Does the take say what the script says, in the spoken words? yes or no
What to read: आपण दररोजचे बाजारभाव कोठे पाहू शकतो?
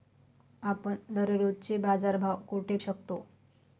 no